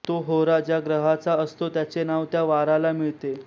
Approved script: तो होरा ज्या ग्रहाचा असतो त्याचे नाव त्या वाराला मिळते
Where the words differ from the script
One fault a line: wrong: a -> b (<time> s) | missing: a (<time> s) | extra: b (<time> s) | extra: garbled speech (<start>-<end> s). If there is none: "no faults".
no faults